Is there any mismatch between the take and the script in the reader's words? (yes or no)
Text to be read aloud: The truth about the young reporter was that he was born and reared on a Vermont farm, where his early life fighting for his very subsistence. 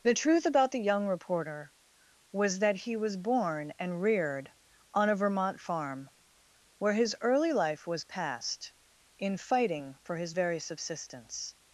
yes